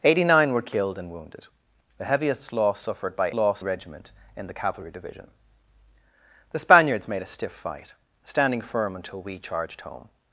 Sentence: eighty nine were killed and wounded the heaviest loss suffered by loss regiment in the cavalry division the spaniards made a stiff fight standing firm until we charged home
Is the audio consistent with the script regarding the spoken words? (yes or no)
yes